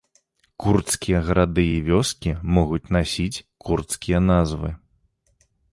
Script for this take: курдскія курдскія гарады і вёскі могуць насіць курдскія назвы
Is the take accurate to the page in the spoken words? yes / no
no